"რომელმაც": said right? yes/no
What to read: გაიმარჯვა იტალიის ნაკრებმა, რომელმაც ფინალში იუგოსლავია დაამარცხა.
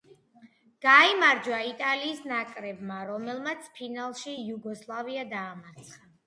yes